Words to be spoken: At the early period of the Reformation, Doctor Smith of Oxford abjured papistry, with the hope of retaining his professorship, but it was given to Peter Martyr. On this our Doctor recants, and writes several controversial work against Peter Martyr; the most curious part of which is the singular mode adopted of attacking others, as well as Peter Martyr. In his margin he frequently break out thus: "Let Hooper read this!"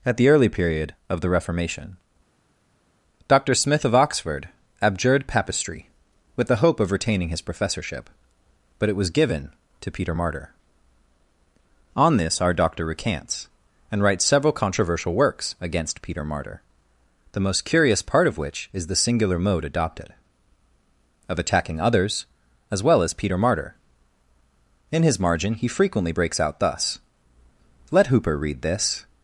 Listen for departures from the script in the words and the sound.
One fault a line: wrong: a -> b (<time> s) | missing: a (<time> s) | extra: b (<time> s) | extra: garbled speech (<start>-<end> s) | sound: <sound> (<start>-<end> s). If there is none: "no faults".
wrong: work -> works (15.1 s)
wrong: break -> breaks (26.1 s)